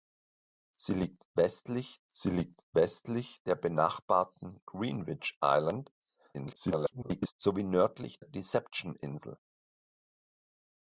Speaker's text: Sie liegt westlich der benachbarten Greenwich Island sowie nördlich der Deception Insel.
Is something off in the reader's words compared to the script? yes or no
yes